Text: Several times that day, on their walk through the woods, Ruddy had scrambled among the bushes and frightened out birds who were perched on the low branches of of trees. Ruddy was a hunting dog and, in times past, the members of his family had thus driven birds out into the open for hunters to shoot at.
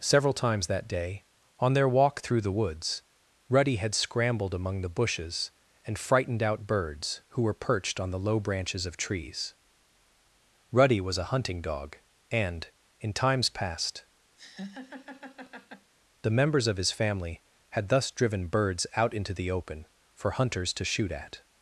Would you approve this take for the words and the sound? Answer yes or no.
no